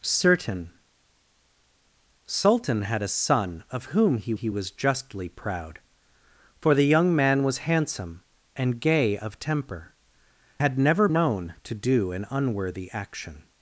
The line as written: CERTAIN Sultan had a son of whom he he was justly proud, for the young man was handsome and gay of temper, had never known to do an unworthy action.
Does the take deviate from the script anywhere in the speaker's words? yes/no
no